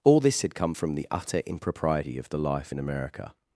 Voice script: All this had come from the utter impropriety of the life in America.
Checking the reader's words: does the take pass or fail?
pass